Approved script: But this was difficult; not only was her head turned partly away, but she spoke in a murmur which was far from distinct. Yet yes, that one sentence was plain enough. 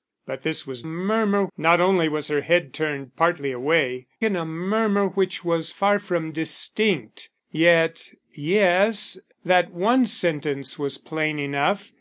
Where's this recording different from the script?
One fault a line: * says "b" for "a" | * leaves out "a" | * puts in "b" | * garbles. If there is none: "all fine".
* says "murmur" for "difficult"
* leaves out "but she spoke"